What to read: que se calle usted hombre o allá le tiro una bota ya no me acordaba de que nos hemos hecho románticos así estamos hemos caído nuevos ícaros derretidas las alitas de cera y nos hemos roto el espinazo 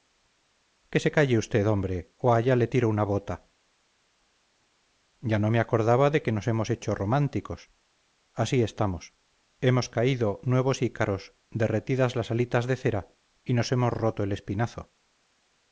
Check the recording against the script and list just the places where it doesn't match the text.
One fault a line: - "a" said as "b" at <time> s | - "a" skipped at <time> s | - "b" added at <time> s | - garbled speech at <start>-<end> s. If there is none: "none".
none